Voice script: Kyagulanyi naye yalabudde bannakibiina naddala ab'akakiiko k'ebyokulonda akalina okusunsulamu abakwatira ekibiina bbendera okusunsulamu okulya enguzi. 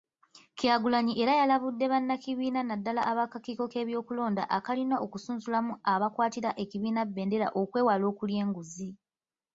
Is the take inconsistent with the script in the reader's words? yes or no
yes